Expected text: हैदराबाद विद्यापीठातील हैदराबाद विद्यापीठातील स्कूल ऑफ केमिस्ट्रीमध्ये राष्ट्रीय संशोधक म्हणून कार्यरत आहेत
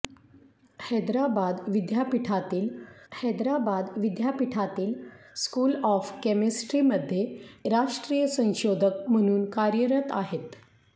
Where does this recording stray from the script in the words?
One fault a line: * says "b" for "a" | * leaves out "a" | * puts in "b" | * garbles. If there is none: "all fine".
all fine